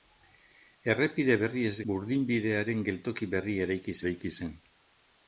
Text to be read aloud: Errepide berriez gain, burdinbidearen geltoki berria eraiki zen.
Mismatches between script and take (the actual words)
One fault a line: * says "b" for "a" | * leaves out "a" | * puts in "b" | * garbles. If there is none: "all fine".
* leaves out "gain"
* puts in "eraiki"